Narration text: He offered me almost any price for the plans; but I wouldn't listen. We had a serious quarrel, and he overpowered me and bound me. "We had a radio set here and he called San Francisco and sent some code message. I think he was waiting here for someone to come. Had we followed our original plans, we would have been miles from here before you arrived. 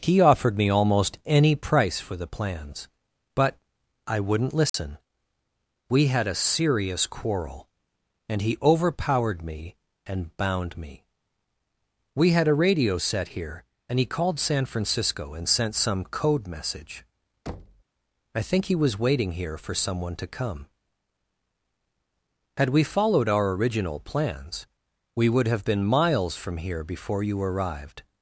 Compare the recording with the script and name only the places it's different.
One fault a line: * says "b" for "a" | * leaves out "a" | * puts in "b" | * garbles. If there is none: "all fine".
all fine